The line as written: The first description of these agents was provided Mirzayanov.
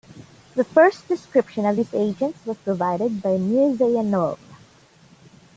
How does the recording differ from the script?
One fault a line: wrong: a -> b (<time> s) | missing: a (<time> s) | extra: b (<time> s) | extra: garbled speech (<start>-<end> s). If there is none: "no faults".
extra: by (3.2 s)